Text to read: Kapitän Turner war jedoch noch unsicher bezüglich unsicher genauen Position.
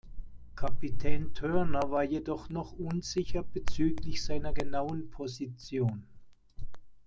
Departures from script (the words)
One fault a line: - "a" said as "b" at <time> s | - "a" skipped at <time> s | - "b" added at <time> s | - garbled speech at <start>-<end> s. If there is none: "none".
- "unsicher" said as "seiner" at 4.2 s